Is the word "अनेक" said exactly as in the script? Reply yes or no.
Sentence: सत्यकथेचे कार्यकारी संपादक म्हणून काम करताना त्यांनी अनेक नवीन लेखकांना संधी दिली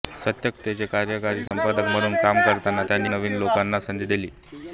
no